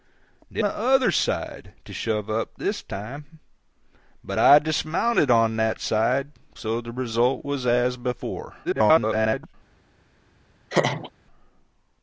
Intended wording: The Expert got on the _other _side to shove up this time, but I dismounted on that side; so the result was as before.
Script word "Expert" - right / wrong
wrong